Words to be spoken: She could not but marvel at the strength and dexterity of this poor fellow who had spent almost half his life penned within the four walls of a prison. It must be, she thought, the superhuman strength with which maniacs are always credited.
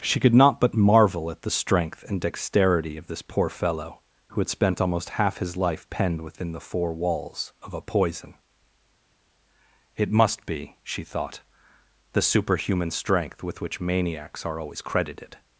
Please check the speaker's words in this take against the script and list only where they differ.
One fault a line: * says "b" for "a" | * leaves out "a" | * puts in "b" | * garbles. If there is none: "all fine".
* says "poison" for "prison"